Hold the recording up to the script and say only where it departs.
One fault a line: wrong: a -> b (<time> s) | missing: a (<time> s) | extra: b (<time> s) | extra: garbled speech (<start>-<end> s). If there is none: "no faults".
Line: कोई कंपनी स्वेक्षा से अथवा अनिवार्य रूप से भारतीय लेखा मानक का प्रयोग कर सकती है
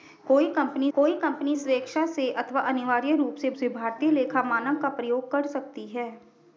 extra: कोई कंपनी (0.9 s)
extra: से (3.5 s)